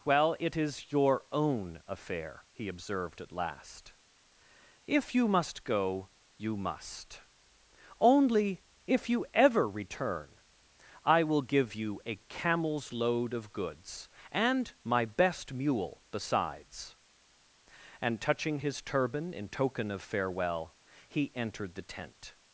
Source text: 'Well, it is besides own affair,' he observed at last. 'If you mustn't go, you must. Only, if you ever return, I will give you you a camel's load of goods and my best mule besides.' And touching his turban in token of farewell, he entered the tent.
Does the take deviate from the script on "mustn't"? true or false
true